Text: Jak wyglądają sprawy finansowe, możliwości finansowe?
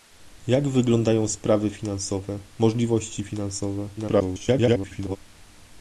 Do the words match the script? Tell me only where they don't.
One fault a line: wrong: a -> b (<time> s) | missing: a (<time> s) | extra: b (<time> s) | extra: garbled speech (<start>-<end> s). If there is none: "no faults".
extra: garbled speech (4.0-5.2 s)